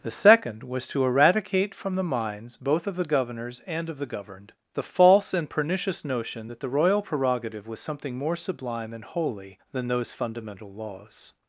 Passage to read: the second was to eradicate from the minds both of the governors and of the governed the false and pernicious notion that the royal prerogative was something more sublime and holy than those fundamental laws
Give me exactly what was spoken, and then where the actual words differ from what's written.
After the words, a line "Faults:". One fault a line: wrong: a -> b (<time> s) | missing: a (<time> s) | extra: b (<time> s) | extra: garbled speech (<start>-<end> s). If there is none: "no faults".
the second was to eradicate from the minds both of the governors and of the governed the false and pernicious notion that the royal prerogative was something more sublime and holy than those fundamental laws
Faults:
no faults